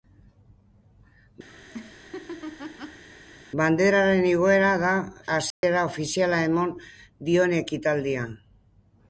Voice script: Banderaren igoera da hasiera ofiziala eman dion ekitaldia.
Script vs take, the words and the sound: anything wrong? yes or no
yes